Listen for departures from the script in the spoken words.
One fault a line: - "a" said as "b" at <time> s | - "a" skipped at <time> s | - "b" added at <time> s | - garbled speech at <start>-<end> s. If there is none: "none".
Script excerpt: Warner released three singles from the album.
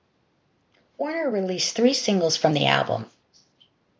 none